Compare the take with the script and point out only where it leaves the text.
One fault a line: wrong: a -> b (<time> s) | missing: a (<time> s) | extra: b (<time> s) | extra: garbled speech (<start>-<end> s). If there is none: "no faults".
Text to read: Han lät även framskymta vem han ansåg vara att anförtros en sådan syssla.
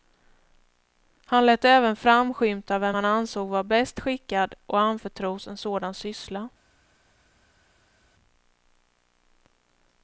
extra: bäst skickad (3.6 s)